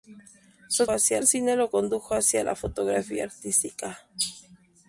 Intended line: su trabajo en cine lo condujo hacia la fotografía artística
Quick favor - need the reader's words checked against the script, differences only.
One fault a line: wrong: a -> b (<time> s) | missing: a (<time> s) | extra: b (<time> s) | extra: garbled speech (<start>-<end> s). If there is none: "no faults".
wrong: trabajo -> hacia (0.9 s)